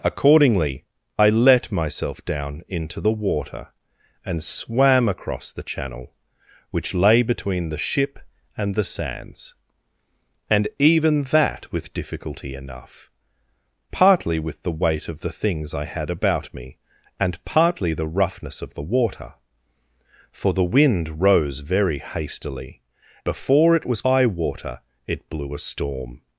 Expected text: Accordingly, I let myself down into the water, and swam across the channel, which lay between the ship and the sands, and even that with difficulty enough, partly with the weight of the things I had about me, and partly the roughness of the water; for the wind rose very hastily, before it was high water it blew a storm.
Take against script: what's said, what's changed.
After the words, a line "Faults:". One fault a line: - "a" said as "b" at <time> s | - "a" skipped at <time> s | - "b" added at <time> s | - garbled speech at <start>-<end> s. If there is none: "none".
Accordingly, I let myself down into the water, and swam across the channel, which lay between the ship and the sands, and even that with difficulty enough, partly with the weight of the things I had about me, and partly the roughness of the water; for the wind rose very hastily, before it was high water it blew a storm.
Faults:
none